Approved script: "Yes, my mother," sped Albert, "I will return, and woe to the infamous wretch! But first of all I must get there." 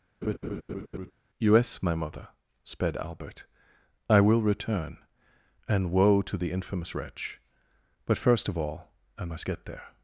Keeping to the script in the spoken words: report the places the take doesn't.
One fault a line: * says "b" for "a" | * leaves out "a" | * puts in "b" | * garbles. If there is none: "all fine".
all fine